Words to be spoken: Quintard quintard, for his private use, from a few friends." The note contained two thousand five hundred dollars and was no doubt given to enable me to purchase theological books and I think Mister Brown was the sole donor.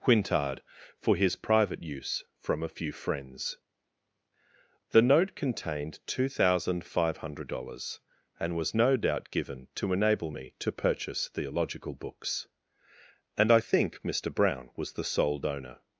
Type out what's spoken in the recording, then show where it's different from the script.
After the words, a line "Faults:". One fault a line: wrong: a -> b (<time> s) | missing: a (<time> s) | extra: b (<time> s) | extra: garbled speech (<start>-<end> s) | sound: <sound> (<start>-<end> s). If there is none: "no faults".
Quintard, for his private use, from a few friends." The note contained two thousand five hundred dollars and was no doubt given to enable me to purchase theological books and I think Mister Brown was the sole donor.
Faults:
missing: quintard (0.6 s)